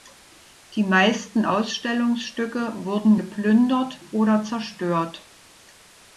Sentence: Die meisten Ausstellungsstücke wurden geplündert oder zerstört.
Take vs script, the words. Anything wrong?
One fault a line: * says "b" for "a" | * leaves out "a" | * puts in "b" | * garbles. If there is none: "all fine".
all fine